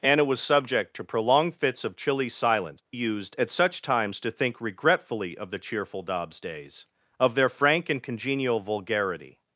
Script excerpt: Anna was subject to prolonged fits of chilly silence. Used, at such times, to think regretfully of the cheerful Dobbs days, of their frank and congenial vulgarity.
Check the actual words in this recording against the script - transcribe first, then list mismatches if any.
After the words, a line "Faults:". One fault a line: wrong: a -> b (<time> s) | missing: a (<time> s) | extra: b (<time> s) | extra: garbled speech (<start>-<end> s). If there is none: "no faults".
Anna was subject to prolonged fits of chilly silence. Used, at such times, to think regretfully of the cheerful Dobbs days, of their frank and congenial vulgarity.
Faults:
no faults